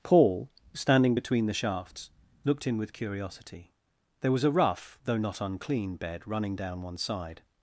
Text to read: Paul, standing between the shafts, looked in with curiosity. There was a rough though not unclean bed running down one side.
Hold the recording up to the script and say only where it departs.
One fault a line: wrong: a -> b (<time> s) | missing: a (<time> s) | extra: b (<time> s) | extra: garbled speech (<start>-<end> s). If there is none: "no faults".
no faults